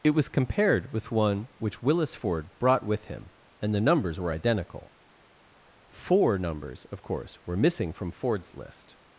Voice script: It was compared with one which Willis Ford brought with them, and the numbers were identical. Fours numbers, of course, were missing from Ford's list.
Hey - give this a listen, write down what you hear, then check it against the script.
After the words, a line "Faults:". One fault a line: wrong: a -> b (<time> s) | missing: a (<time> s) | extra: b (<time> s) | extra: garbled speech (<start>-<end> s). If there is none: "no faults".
It was compared with one which Willis Ford brought with him, and the numbers were identical. Four numbers, of course, were missing from Ford's list.
Faults:
wrong: them -> him (3.0 s)
wrong: Fours -> Four (5.9 s)